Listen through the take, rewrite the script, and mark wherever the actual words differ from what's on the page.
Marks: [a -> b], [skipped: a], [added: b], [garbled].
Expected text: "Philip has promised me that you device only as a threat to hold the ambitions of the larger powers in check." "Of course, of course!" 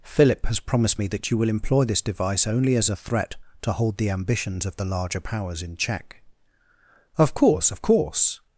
"Philip has promised me that you [added: will employ this] device only as a threat to hold the ambitions of the larger powers in check." "Of course, of course!"